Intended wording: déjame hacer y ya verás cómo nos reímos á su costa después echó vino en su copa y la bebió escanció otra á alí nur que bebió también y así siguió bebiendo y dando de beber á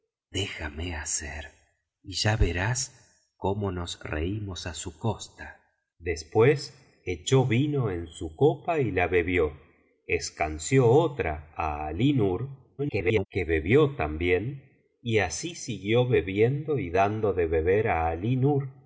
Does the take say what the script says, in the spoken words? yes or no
no